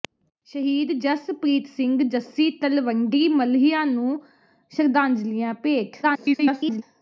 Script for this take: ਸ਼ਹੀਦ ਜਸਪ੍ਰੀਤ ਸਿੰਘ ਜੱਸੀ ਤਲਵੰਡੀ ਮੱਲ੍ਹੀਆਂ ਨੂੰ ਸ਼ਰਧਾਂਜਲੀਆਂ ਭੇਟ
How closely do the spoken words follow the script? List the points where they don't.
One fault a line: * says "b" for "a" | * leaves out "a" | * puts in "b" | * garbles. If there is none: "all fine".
* garbles